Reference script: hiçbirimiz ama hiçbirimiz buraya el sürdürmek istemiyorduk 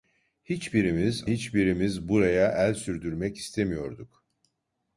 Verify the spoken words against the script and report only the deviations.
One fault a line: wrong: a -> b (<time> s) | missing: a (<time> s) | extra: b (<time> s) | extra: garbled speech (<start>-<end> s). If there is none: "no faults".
missing: ama (1.2 s)